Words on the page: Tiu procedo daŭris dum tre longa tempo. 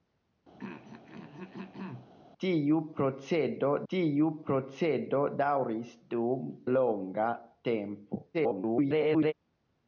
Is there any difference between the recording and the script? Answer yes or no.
yes